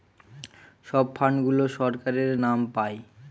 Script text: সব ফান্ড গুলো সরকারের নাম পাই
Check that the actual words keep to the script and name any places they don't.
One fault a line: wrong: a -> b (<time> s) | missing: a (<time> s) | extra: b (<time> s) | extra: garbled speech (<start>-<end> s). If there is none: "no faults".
no faults